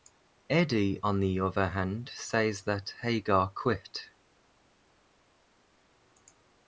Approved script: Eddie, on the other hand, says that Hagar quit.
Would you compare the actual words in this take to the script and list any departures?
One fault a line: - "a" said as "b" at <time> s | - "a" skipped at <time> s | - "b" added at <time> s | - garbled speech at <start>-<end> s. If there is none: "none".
none